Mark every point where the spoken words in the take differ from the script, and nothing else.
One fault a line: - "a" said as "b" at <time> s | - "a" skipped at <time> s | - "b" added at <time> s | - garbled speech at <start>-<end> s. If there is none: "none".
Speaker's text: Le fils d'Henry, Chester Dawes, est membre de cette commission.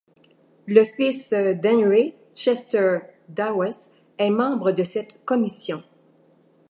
none